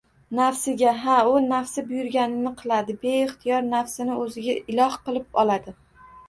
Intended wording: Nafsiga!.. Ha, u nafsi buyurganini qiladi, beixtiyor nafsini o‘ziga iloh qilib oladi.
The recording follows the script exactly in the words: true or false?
true